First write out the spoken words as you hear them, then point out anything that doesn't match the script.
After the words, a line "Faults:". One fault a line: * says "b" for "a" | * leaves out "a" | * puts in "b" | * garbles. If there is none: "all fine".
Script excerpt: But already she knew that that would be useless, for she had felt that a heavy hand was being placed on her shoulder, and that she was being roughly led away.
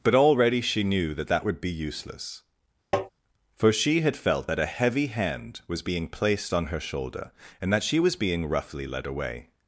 But already she knew that that would be useless, for she had felt that a heavy hand was being placed on her shoulder, and that she was being roughly led away.
Faults:
all fine